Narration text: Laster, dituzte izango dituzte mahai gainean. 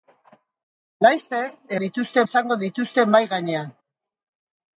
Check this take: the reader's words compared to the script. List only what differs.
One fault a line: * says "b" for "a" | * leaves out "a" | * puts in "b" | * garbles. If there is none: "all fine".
all fine